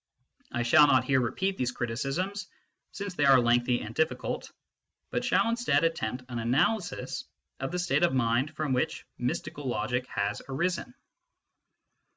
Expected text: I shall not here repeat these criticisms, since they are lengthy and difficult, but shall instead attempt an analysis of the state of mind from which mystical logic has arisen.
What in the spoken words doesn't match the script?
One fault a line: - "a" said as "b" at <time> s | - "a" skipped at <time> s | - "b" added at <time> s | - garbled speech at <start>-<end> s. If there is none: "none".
none